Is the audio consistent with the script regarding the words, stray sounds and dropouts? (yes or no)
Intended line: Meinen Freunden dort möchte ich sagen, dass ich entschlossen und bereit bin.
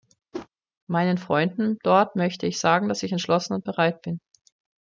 no